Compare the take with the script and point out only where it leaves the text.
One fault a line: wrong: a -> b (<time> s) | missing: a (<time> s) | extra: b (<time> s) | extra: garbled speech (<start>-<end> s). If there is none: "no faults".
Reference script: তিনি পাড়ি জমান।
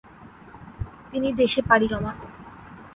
extra: দেশে (1.3 s)